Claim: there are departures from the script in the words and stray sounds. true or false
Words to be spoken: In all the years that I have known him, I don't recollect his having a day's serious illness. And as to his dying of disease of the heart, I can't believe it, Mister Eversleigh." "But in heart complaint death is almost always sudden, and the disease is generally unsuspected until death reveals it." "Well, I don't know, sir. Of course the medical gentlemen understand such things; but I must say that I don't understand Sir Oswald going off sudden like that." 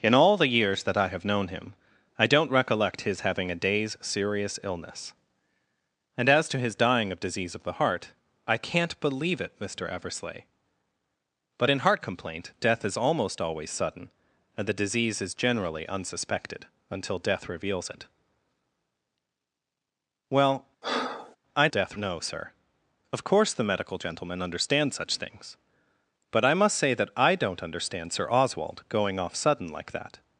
true